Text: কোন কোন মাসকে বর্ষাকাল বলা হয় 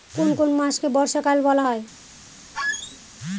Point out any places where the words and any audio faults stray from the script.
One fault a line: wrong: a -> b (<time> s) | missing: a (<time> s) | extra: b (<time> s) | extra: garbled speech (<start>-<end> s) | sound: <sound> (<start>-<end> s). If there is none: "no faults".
sound: squeak (2.5-3.0 s)